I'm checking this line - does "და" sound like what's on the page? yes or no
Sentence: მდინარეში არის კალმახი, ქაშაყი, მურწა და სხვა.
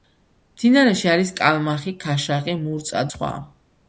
no